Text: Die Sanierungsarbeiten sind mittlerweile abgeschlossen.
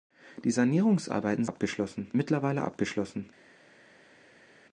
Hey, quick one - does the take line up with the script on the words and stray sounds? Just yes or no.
no